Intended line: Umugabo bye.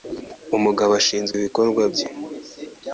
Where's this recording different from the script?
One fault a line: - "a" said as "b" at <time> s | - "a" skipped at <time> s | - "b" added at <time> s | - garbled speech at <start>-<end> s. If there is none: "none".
- "ashinzwe ibikorwa" added at 1.0 s